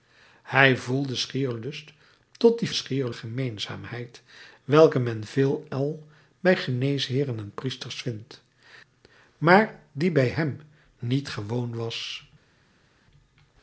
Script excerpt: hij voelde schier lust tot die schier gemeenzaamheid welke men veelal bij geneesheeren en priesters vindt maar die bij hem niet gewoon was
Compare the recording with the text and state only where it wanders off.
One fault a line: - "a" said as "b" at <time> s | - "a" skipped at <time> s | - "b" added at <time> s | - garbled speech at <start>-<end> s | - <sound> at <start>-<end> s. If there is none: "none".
none